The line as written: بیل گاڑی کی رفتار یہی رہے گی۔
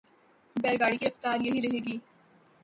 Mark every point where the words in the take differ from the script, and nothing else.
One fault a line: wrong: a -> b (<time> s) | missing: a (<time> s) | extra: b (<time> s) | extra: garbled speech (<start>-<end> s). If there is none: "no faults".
no faults